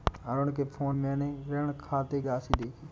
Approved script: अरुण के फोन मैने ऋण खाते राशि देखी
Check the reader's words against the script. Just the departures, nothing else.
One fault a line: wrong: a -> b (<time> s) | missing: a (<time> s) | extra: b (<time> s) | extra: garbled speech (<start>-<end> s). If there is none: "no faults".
no faults